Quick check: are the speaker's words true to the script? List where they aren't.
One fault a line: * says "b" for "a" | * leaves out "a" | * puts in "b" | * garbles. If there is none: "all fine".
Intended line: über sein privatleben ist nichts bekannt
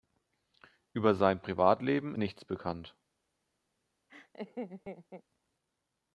* leaves out "ist"